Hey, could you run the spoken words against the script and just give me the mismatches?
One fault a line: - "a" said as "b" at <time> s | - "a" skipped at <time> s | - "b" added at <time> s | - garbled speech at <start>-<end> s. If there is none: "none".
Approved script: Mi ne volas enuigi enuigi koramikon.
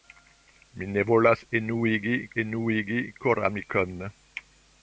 none